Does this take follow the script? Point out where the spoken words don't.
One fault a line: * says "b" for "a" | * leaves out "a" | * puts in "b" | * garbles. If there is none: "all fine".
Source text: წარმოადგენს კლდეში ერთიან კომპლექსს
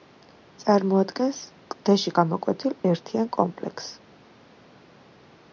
* puts in "გამოკვეთილ"